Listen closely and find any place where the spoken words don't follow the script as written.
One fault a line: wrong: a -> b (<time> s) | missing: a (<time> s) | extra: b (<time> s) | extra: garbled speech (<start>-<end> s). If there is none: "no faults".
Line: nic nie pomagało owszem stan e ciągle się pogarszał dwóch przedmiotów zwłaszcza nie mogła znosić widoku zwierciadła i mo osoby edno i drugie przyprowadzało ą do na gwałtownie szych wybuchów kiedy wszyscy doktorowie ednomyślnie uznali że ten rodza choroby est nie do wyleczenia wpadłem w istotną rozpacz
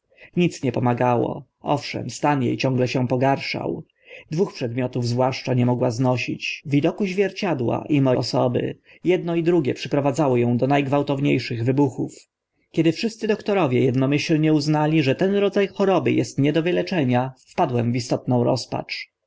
no faults